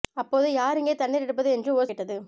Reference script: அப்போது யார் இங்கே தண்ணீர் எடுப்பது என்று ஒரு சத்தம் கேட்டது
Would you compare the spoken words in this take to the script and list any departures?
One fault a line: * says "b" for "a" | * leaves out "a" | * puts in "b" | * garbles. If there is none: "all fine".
* leaves out "சத்தம்"